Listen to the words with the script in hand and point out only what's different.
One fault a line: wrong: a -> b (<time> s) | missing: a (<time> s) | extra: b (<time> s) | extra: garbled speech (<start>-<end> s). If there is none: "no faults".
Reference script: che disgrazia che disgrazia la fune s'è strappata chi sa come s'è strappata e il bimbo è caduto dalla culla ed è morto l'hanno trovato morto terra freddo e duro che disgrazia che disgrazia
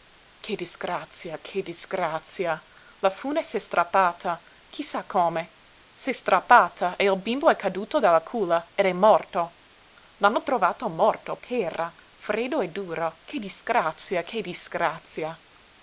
no faults